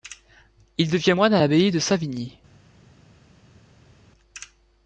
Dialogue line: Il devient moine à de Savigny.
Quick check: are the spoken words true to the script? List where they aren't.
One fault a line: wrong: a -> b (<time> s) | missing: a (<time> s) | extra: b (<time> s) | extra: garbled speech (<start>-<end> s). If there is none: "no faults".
extra: l'abbaye (1.4 s)